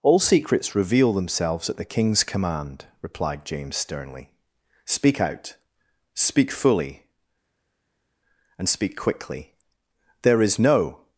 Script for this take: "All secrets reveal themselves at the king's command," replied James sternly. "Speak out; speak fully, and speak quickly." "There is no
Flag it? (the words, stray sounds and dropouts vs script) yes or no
no